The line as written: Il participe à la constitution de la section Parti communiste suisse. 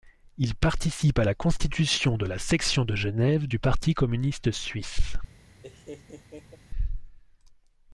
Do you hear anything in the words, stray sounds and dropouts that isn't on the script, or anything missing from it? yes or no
yes